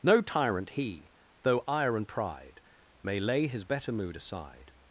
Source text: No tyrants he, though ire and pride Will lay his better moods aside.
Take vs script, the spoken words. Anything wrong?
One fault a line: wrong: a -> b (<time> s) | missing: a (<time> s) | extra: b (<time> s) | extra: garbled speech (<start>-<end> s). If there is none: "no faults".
wrong: tyrants -> tyrant (0.2 s)
wrong: Will -> May (3.0 s)
wrong: moods -> mood (3.9 s)